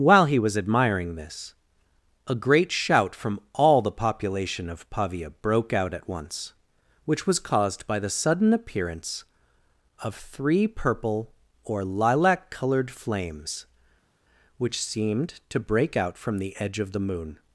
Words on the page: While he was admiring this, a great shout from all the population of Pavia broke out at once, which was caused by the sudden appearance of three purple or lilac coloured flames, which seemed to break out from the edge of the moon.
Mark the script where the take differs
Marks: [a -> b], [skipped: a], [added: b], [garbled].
While he was admiring this, a great shout from all the population of Pavia broke out at once, which was caused by the sudden appearance of three purple or lilac coloured flames, which seemed to break out from the edge of the moon.